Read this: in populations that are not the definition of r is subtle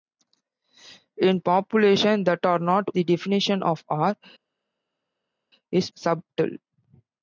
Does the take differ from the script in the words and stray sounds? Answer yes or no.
no